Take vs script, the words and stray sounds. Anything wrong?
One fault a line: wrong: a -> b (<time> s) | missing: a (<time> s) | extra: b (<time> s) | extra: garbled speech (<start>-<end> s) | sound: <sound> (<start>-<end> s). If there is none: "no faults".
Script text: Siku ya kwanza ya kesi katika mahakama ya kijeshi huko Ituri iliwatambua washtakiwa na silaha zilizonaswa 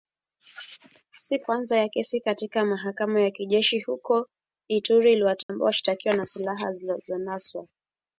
missing: ya (1.5 s)
sound: dropout (5.4-5.5 s)